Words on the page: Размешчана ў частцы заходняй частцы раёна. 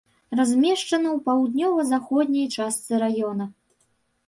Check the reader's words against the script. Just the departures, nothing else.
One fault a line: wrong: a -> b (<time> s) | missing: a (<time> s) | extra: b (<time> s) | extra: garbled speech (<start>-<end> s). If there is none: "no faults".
wrong: частцы -> паўднёва (1.2 s)